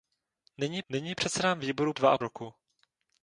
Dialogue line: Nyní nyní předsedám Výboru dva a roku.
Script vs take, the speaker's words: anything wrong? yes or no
no